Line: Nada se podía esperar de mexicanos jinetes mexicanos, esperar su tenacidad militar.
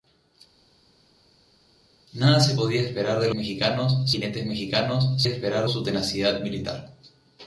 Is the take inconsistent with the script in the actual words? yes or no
no